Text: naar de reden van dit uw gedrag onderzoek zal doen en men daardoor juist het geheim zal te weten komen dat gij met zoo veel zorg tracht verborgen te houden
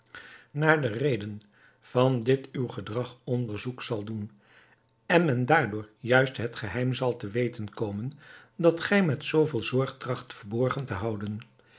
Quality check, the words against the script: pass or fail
pass